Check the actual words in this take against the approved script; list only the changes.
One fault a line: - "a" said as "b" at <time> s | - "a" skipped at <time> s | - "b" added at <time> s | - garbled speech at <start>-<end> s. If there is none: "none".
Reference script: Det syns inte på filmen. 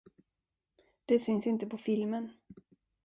none